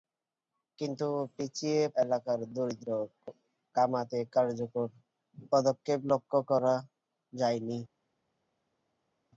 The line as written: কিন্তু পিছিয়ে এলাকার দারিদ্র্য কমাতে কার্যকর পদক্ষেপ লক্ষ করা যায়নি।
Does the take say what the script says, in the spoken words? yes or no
yes